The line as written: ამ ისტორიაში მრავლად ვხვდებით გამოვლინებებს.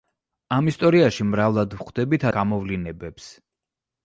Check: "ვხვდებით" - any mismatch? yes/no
no